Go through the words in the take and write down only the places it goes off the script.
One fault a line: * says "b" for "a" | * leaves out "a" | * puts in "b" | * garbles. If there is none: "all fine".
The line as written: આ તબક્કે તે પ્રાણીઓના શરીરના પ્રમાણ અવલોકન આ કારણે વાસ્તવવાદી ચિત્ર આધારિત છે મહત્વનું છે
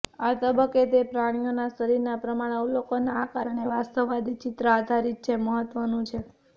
all fine